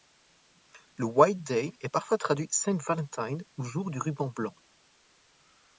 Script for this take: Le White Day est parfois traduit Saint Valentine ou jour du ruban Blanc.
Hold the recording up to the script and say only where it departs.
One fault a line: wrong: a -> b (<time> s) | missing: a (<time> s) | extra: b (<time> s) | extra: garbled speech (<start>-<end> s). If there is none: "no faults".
no faults